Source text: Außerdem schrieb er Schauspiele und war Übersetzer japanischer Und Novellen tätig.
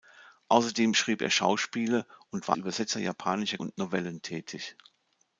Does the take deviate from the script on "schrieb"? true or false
false